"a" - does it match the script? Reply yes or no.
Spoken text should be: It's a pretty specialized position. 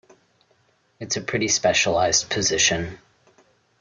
yes